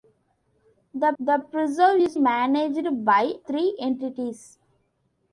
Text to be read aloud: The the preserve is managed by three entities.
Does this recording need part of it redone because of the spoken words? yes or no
no